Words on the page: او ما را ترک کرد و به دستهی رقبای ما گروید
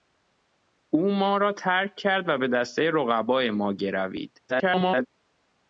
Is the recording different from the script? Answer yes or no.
yes